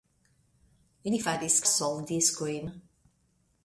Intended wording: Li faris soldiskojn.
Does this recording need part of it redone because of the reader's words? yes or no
no